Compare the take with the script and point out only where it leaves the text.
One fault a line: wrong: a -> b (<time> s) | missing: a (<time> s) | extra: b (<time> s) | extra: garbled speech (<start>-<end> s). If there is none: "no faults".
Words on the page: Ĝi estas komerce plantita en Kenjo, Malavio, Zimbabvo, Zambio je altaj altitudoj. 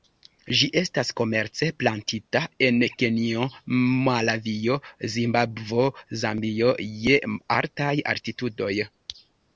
no faults